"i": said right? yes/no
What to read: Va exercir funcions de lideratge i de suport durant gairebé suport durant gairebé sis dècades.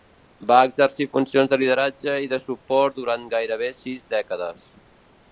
yes